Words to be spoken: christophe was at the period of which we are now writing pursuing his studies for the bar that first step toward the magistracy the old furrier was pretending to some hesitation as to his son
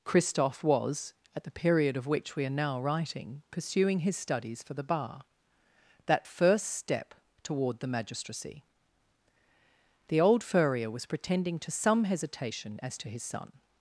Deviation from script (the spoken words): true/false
false